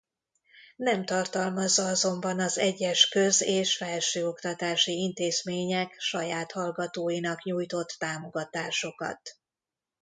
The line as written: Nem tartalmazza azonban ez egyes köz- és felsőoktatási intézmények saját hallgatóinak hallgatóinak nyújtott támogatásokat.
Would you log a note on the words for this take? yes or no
yes